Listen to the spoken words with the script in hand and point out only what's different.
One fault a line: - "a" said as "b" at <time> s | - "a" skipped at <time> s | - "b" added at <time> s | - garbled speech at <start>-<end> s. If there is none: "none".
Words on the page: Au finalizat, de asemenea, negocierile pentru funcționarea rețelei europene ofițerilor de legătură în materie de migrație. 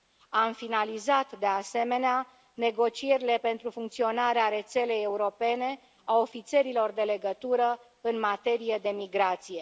- "Au" said as "Am" at 0.3 s
- "a" added at 6.0 s